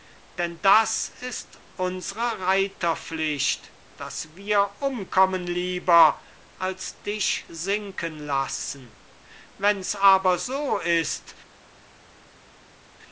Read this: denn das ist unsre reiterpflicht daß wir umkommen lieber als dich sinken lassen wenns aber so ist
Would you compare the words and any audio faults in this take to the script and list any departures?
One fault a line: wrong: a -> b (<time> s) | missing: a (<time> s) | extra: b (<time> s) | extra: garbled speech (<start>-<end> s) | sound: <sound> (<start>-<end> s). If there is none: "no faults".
no faults